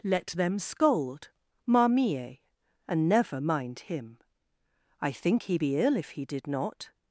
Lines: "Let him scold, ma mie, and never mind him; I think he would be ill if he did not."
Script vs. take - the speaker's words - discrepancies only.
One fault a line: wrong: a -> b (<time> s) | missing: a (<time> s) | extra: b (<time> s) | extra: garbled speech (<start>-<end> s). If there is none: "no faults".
wrong: him -> them (0.3 s)
missing: would (5.6 s)